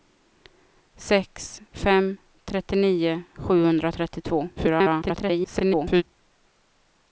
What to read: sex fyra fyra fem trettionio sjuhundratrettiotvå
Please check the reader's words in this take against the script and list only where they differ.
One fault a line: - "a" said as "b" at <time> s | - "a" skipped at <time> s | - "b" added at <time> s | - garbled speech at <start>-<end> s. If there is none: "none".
- "fyra fyra" skipped at 1.6 s
- garbled speech at 4.6-6.0 s